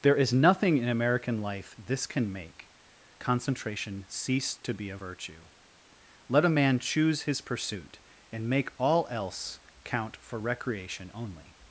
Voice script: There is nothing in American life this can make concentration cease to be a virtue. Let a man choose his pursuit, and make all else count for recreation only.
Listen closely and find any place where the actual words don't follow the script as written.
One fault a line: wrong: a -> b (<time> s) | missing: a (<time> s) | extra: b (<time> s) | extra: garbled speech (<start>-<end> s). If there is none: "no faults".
no faults